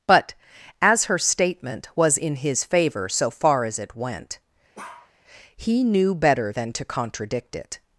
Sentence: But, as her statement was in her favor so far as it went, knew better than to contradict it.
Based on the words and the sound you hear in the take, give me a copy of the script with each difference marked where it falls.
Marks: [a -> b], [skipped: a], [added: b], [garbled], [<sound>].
But, as her statement was in [her -> his] favor so far as it went, [bark] [added: he] knew better than to contradict it.